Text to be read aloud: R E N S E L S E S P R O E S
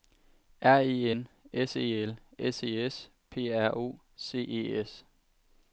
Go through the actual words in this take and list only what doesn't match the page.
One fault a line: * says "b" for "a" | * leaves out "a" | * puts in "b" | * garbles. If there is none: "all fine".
* puts in "C"